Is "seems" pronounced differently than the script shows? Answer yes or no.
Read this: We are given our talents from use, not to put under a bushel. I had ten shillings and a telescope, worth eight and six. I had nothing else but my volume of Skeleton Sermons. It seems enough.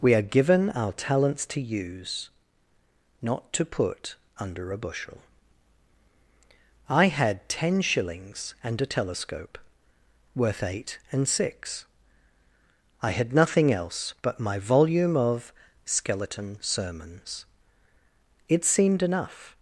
yes